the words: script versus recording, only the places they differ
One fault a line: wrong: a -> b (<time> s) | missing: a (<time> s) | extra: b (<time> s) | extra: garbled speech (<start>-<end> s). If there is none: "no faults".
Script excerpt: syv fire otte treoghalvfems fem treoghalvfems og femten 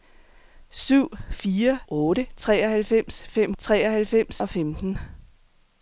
no faults